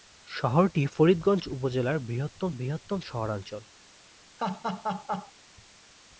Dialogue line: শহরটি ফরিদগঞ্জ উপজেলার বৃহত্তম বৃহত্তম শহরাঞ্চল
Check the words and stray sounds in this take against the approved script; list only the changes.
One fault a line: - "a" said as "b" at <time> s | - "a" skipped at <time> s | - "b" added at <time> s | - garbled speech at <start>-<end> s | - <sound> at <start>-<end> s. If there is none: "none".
- laugh at 4.4-5.3 s